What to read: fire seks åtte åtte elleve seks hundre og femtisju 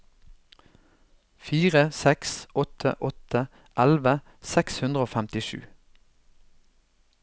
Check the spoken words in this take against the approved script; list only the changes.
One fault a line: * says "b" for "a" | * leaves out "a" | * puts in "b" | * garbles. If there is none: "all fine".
all fine